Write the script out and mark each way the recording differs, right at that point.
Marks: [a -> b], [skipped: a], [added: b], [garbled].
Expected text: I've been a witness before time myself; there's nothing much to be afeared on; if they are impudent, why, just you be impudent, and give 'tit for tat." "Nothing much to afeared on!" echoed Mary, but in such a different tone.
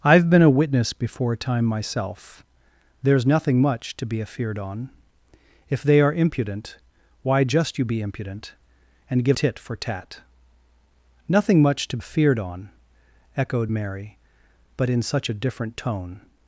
I've been a witness before time myself; there's nothing much to be afeared on; if they are impudent, why, just you be impudent, and give 'tit for tat." "Nothing much to afeared on!" echoed Mary, but in such a different tone.